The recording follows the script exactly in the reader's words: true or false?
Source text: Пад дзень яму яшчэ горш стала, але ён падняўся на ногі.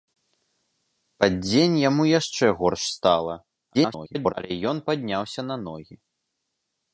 false